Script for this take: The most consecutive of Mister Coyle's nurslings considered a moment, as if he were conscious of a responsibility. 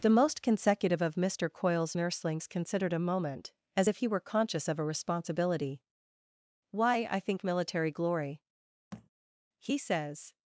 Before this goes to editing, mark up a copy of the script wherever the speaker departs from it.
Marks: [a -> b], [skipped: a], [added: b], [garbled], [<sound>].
The most consecutive of Mister Coyle's nurslings considered a moment, as if he were conscious of a responsibility. [added: Why I think military glory He says] [thud]